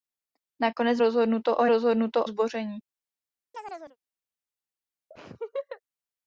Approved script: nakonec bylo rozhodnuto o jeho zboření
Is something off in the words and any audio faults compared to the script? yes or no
yes